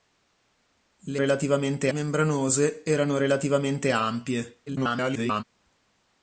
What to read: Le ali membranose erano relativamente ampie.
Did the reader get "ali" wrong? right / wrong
wrong